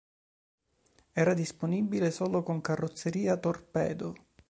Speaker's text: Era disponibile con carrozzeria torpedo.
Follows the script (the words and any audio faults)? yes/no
no